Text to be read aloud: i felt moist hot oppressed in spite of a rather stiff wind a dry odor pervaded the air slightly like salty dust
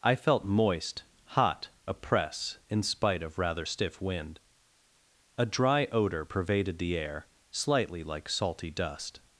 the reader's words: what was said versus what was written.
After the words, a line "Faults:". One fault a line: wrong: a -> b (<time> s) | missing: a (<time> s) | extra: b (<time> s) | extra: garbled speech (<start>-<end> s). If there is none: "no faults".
i felt moist hot oppress in spite of rather stiff wind a dry odor pervaded the air slightly like salty dust
Faults:
wrong: oppressed -> oppress (1.9 s)
missing: a (3.4 s)